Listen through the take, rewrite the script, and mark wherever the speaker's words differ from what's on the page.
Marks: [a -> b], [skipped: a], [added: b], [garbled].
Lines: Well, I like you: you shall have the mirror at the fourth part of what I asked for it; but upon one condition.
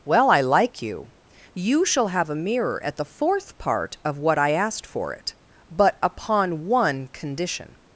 Well, I like you: you shall have [the -> a] mirror at the fourth part of what I asked for it; but upon one condition.